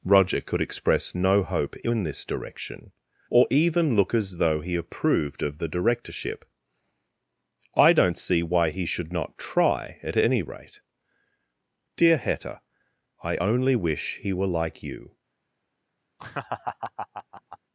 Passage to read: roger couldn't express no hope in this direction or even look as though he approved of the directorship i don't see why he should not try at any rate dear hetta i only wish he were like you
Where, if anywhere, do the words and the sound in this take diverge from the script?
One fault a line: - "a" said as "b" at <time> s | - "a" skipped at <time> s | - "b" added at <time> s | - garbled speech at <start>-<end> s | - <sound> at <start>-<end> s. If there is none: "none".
- "couldn't" said as "could" at 0.4 s
- laugh at 16.2-17.6 s